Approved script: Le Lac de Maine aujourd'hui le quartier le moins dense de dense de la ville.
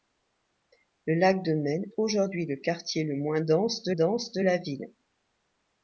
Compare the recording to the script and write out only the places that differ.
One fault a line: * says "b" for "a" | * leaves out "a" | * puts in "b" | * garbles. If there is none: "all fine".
all fine